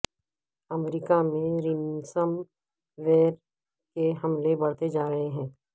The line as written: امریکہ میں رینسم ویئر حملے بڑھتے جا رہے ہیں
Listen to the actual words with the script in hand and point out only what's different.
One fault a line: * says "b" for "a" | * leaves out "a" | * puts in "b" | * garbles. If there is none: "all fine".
* puts in "کے"